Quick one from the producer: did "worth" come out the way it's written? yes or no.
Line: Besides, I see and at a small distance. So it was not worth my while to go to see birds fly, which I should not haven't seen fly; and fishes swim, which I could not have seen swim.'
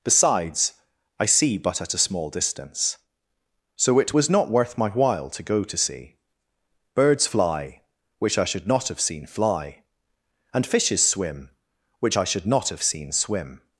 yes